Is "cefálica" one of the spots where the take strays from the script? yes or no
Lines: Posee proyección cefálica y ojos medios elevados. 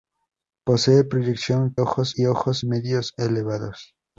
yes